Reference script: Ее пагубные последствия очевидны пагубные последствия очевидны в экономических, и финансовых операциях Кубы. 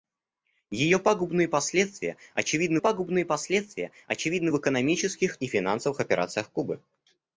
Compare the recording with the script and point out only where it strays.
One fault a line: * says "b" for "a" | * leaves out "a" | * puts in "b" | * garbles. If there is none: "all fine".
all fine